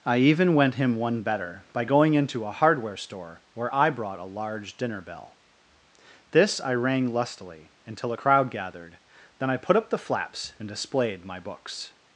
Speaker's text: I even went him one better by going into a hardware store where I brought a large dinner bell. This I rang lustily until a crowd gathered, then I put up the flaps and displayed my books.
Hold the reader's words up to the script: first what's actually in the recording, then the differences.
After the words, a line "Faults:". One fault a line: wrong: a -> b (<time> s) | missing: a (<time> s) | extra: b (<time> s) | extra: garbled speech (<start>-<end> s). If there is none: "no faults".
I even went him one better by going into a hardware store where I brought a large dinner bell. This I rang lustily until a crowd gathered, then I put up the flaps and displayed my books.
Faults:
no faults